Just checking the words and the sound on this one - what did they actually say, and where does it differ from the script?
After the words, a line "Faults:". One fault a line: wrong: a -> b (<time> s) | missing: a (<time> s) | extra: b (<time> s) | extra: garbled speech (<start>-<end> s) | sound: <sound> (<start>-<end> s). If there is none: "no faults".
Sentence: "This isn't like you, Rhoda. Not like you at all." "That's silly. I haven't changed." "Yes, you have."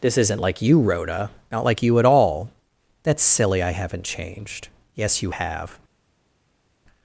"This isn't like you, Rhoda. Not like you at all." "That's silly. I haven't changed." "Yes, you have."
Faults:
no faults